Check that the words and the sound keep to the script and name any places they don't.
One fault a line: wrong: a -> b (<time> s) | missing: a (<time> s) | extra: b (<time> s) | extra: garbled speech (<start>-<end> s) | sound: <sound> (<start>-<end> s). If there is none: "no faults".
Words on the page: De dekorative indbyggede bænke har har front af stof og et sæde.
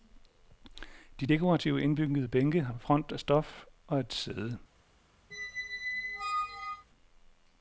missing: har (2.8 s)
sound: squeak (5.3-6.9 s)